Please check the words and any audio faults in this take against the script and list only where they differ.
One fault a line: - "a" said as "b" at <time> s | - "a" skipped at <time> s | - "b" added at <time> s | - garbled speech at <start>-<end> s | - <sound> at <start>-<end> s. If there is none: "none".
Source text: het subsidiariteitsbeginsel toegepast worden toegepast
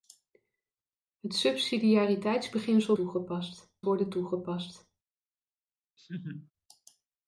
- laugh at 6.0-6.5 s